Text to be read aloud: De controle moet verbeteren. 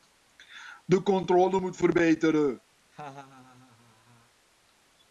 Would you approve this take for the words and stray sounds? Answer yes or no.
no